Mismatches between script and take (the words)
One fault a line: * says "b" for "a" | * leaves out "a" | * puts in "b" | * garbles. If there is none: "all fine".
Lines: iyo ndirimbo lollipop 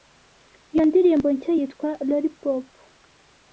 * puts in "nshya yitwa"